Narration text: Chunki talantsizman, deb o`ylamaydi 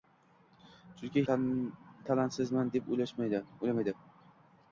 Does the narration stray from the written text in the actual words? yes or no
no